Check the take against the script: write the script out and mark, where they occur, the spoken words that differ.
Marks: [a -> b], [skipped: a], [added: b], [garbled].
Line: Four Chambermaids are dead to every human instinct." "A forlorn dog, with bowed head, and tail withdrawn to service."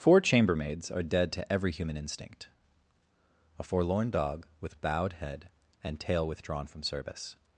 Four Chambermaids are dead to every human instinct." "A forlorn dog, with bowed head, and tail withdrawn [to -> from] service."